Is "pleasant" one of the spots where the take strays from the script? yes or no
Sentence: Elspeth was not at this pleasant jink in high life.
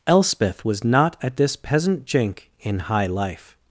yes